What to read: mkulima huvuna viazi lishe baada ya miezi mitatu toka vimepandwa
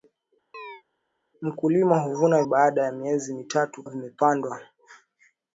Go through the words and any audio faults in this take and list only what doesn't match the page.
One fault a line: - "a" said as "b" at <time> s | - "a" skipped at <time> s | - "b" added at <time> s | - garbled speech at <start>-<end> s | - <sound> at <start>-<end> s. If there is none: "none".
- chirp at 0.5-0.8 s
- "viazi lishe" skipped at 2.4 s
- "toka" skipped at 3.8 s